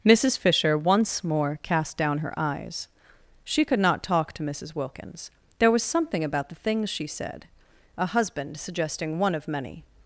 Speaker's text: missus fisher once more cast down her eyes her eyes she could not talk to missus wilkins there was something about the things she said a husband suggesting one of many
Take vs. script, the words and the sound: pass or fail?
fail